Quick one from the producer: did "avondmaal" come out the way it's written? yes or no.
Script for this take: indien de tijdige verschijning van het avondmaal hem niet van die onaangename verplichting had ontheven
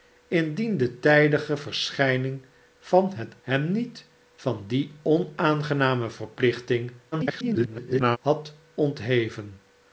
no